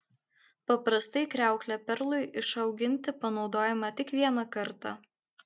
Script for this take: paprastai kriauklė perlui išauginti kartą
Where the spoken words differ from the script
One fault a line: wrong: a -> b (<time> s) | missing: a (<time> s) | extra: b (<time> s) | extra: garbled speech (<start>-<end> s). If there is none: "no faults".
extra: panaudojama tik vieną (3.3 s)